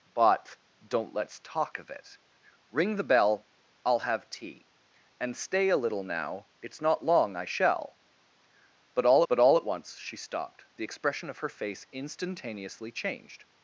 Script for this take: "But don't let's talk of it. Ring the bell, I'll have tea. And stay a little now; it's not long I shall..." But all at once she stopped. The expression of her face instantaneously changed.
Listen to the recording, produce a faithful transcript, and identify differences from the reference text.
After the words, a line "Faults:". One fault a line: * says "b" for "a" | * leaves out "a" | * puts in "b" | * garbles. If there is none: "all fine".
"But don't let's talk of it. Ring the bell, I'll have tea. And stay a little now; it's not long I shall..." But all but all at once she stopped. The expression of her face instantaneously changed.
Faults:
* puts in "but all"